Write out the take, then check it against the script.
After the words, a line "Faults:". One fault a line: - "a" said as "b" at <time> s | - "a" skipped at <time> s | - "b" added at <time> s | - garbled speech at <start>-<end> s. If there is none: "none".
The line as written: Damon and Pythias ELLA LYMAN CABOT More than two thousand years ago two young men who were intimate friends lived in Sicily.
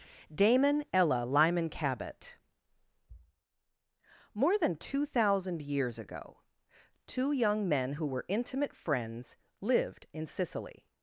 Damon ELLA LYMAN CABOT More than two thousand years ago two young men who were intimate friends lived in Sicily.
Faults:
- "and Pythias" skipped at 0.9 s